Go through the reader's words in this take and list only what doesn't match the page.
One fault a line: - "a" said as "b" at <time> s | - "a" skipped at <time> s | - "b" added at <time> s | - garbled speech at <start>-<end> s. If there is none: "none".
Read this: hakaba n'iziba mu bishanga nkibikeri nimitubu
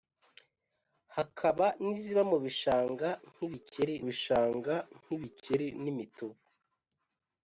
- "bishanga nkibikeri" added at 4.1 s